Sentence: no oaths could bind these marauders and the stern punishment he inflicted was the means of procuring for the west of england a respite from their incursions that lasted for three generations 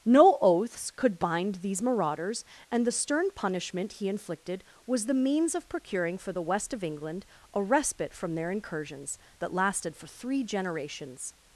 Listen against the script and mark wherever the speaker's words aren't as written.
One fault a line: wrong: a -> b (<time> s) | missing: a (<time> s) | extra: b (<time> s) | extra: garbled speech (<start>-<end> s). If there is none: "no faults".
no faults